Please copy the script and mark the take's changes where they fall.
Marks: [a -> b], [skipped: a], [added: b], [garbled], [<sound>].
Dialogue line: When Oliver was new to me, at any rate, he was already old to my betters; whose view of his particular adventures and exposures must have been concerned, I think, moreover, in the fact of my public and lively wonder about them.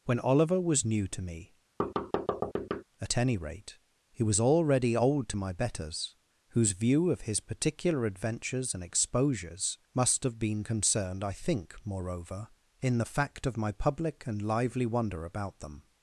When Oliver was new to me, [thud] at any rate, he was already old to my betters; whose view of his particular adventures and exposures must have been concerned, I think, moreover, in the fact of my public and lively wonder about them.